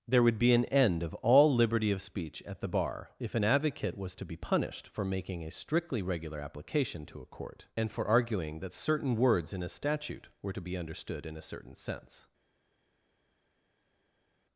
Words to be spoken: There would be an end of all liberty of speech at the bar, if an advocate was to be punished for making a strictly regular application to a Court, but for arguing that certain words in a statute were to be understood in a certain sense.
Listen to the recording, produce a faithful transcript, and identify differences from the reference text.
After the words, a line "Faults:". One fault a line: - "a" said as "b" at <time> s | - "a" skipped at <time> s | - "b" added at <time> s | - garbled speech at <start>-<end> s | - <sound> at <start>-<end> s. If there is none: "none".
There would be an end of all liberty of speech at the bar, if an advocate was to be punished for making a strictly regular application to a Court, and for arguing that certain words in a statute were to be understood in a certain sense.
Faults:
- "but" said as "and" at 7.8 s